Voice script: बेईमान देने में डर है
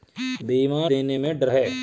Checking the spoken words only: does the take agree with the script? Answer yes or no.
yes